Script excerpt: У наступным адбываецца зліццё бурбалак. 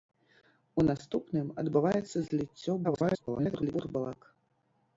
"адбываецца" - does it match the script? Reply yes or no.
yes